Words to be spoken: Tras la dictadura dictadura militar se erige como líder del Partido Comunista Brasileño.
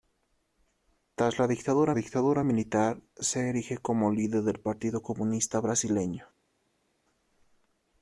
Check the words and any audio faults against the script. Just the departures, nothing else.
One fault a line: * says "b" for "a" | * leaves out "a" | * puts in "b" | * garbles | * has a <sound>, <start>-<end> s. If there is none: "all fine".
all fine